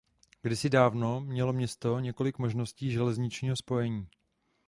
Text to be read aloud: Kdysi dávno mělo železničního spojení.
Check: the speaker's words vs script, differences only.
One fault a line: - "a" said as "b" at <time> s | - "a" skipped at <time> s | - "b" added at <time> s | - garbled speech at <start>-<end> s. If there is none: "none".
- "město několik možností" added at 1.5 s